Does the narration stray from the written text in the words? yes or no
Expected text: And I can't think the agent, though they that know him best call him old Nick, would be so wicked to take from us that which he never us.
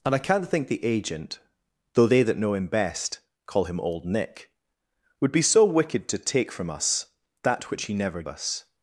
no